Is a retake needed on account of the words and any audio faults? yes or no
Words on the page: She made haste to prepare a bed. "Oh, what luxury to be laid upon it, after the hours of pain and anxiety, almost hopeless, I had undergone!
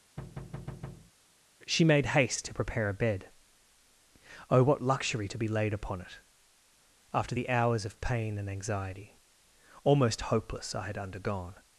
yes